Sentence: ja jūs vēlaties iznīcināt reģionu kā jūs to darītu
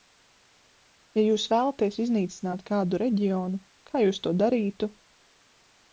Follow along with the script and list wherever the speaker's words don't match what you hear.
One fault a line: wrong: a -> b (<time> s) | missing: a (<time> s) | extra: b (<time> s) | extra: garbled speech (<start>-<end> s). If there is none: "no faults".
extra: kādu (2.7 s)